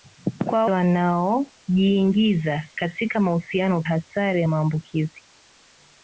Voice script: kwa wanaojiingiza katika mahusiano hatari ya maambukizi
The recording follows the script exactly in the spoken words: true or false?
true